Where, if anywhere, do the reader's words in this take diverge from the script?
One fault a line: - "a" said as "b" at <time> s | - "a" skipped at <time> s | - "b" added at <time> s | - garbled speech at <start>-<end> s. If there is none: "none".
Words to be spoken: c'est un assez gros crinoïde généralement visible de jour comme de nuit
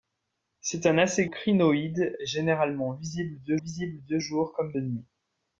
- "gros" skipped at 1.3 s
- "visible de" added at 3.6 s